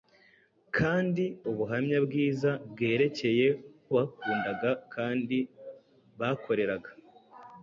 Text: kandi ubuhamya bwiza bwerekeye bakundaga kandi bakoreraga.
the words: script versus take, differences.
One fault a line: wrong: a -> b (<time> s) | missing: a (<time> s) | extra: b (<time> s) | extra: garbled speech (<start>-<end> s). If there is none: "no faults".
no faults